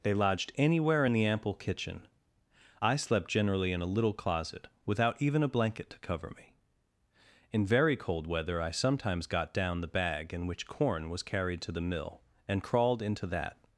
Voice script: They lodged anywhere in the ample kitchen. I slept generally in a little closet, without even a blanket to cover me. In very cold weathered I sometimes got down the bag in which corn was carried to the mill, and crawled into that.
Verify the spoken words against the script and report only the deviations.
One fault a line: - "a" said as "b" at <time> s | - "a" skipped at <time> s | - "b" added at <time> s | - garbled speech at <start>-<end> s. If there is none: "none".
- "weathered" said as "weather" at 8.3 s